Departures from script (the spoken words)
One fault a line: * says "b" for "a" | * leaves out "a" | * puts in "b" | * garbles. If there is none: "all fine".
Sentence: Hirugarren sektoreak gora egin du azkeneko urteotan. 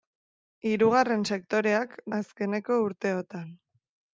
* leaves out "gora egin du"